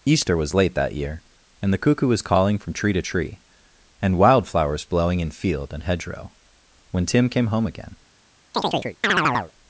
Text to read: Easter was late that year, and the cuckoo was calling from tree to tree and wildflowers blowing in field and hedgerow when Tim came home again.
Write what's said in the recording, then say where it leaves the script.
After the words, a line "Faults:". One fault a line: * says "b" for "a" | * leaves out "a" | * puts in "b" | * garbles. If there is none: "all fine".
Easter was late that year, and the cuckoo was calling from tree to tree and wildflowers blowing in field and hedgerow when Tim came home again.
Faults:
all fine